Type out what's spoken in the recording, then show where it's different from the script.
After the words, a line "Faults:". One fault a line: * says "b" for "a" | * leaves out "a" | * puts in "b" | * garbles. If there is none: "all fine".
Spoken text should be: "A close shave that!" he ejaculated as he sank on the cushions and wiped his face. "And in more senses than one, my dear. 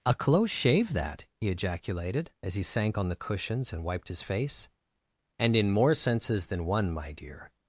"A close shave that!" he ejaculated as he sank on the cushions and wiped his face. "And in more senses than one, my dear.
Faults:
all fine